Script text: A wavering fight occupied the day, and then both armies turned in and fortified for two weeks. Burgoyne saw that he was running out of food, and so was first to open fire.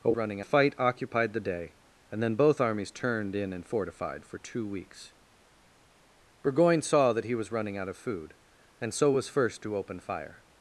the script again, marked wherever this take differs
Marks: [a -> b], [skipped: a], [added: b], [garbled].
A [wavering -> running] fight occupied the day, and then both armies turned in and fortified for two weeks. Burgoyne saw that he was running out of food, and so was first to open fire.